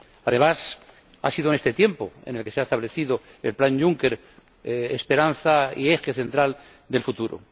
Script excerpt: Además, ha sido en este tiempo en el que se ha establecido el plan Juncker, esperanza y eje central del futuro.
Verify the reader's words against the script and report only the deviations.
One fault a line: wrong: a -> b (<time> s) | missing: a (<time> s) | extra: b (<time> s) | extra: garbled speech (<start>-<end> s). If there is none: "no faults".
no faults